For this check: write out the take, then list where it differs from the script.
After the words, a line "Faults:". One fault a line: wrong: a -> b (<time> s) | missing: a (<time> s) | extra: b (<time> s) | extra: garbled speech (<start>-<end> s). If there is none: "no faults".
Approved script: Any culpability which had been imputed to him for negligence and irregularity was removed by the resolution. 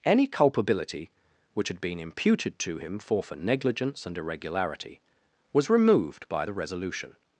Any culpability which had been imputed to him for for negligence and irregularity was removed by the resolution.
Faults:
extra: for (3.2 s)